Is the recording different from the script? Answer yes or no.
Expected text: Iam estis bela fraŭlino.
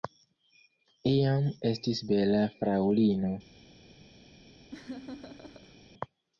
no